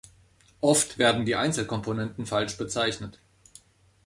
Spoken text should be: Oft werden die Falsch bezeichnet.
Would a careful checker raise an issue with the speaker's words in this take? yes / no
yes